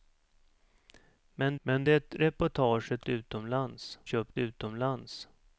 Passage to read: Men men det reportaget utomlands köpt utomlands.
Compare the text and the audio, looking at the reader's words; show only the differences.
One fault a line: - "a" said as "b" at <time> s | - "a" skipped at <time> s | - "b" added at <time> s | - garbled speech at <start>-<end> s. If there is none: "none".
none